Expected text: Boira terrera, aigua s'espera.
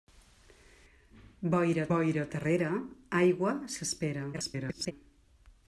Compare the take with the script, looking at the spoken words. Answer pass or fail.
fail